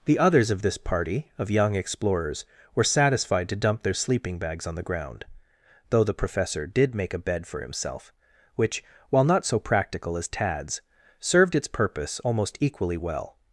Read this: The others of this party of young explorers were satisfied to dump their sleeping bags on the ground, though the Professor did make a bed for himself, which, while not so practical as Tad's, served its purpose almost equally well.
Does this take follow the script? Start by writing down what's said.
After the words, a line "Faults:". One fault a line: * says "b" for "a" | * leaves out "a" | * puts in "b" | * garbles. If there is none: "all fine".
The others of this party of young explorers were satisfied to dump their sleeping bags on the ground, though the Professor did make a bed for himself, which, while not so practical as Tad's, served its purpose almost equally well.
Faults:
all fine